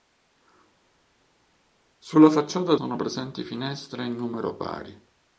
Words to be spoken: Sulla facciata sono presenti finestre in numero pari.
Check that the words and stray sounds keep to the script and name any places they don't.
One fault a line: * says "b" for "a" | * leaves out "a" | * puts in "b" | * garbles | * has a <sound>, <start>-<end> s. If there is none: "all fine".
all fine